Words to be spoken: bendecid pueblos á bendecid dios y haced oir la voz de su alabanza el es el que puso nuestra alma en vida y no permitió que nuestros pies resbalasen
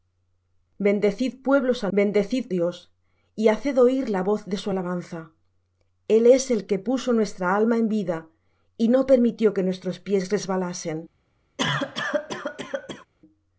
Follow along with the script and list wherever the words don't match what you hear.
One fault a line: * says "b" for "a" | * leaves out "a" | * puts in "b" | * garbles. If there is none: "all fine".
all fine